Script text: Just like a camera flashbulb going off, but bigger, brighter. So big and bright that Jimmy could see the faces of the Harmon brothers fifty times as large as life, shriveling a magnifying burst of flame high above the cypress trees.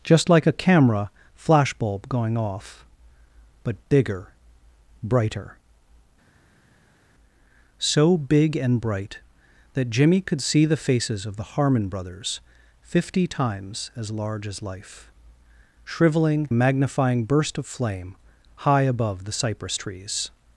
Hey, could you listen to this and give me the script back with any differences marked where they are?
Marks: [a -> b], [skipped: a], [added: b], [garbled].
Just like a camera flashbulb going off, but bigger, brighter. So big and bright that Jimmy could see the faces of the Harmon brothers fifty times as large as life, shriveling a magnifying burst of flame high above the cypress trees.